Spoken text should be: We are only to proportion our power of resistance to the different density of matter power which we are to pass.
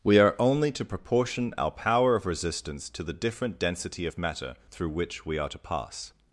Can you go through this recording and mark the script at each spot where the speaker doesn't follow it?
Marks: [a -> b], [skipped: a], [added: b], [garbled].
We are only to proportion our power of resistance to the different density of matter [power -> through] which we are to pass.